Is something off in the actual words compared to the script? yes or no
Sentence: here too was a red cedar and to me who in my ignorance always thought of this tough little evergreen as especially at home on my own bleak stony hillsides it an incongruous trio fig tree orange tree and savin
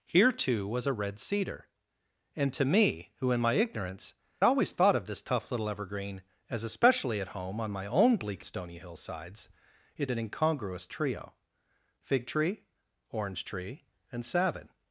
no